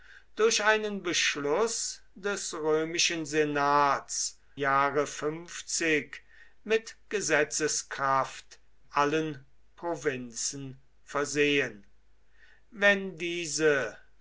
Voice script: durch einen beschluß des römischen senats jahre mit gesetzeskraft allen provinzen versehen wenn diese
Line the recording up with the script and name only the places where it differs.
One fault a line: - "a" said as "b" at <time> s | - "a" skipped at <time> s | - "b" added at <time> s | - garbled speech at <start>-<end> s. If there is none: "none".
none